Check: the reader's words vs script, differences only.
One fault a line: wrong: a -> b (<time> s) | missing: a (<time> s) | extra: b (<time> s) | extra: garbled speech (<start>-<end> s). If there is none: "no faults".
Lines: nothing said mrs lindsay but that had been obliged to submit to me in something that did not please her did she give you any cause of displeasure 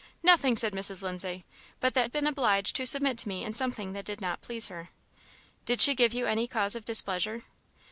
no faults